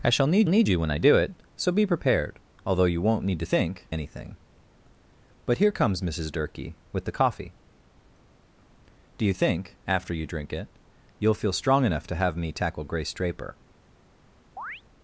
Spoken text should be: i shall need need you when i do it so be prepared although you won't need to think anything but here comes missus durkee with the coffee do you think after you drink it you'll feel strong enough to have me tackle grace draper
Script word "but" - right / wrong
right